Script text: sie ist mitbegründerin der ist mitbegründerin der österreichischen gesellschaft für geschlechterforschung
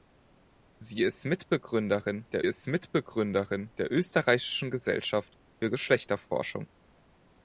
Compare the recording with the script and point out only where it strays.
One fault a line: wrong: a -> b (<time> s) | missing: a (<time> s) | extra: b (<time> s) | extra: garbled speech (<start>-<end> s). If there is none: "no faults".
no faults